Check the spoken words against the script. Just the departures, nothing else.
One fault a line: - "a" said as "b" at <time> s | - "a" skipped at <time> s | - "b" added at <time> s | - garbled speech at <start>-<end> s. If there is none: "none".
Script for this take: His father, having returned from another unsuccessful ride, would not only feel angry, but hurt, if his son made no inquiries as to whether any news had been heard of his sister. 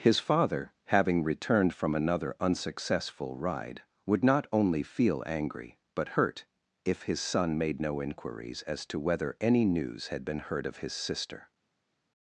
none